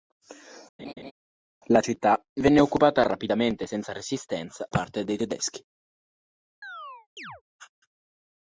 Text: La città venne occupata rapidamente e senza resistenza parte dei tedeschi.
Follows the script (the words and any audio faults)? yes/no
no